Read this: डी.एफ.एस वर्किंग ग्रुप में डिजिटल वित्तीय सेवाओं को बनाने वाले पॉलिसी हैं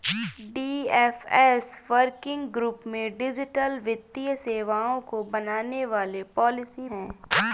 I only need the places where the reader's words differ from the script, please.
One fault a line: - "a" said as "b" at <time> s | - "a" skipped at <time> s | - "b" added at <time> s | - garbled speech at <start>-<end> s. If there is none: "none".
none